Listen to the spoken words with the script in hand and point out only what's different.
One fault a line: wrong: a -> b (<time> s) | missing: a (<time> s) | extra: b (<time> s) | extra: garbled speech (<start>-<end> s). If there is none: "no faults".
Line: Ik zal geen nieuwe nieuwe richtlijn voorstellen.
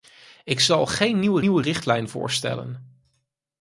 no faults